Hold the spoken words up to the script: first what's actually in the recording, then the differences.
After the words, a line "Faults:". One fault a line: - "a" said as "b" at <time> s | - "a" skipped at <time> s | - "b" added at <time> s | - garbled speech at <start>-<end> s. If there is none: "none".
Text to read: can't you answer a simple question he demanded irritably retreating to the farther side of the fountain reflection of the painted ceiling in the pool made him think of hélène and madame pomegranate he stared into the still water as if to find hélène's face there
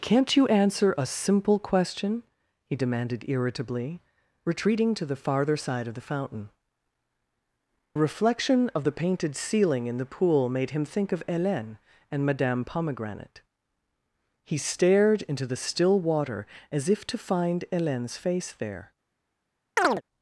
can't you answer a simple question he demanded irritably retreating to the farther side of the fountain reflection of the painted ceiling in the pool made him think of hélène and madame pomegranate he stared into the still water as if to find hélène's face there
Faults:
none